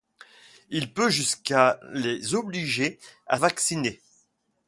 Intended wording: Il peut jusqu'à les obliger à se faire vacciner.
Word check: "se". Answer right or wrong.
wrong